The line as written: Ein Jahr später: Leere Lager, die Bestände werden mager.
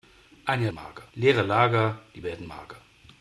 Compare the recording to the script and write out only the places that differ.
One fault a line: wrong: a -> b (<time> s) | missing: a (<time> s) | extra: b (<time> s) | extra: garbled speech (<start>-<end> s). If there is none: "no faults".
wrong: später -> mager (0.7 s)
missing: Bestände (2.2 s)